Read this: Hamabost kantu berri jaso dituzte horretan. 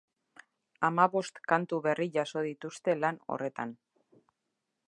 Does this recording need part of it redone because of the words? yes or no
yes